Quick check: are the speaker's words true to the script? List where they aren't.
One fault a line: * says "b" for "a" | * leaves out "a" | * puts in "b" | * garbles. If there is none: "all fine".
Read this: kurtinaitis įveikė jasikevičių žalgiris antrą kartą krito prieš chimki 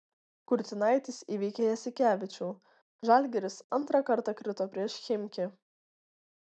all fine